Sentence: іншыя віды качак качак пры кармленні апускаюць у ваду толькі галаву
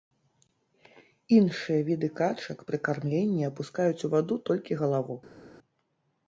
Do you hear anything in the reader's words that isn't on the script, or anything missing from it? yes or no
yes